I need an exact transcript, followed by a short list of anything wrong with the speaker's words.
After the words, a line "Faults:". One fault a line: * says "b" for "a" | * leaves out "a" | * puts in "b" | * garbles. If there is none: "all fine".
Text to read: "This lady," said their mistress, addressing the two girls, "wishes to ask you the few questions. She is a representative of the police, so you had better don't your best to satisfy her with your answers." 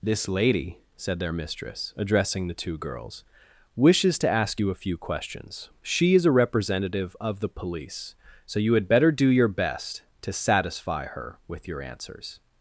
"This lady," said their mistress, addressing the two girls, "wishes to ask you a few questions. She is a representative of the police, so you had better do your best to satisfy her with your answers."
Faults:
* says "a" for "the"
* says "do" for "don't"